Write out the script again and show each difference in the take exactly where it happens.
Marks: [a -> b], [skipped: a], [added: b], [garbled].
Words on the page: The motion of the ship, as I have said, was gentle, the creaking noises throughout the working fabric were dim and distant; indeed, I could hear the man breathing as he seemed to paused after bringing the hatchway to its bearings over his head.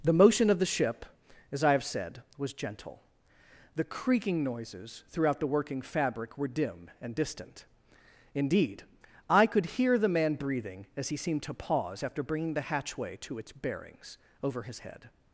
The motion of the ship, as I have said, was gentle, the creaking noises throughout the working fabric were dim and distant; indeed, I could hear the man breathing as he seemed to [paused -> pause] after bringing the hatchway to its bearings over his head.